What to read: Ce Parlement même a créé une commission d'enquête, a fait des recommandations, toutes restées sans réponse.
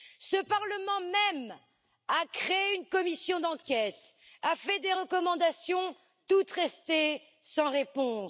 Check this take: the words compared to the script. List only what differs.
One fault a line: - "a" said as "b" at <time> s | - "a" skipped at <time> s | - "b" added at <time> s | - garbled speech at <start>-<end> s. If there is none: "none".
none